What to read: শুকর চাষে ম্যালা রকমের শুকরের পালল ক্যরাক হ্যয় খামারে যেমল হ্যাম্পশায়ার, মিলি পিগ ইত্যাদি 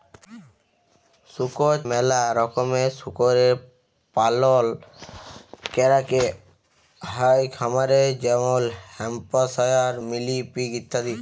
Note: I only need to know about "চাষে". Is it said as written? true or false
false